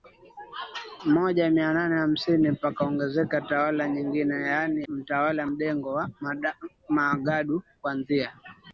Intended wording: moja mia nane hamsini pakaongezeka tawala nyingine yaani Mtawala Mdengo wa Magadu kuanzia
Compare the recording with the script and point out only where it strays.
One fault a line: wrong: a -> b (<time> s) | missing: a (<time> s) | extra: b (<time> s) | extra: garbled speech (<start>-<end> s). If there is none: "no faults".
no faults